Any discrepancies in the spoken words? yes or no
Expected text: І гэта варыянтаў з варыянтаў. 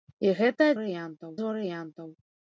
no